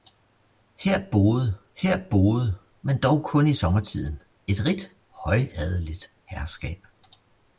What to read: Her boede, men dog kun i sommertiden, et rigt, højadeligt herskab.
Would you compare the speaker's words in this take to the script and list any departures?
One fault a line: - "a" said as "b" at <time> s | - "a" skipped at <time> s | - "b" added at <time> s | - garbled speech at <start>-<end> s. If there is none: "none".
- "her boede" added at 1.8 s